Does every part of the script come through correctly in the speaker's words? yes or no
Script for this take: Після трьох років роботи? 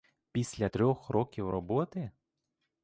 yes